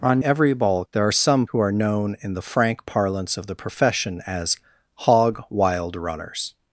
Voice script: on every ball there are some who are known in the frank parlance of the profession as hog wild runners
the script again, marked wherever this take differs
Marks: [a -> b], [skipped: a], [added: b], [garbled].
on every ball there are some who are known in the frank parlance of the profession as hog wild runners